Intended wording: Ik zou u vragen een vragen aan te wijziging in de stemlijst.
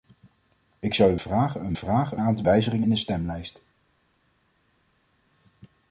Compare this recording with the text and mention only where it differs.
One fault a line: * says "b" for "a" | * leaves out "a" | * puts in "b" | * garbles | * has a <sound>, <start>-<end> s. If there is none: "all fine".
all fine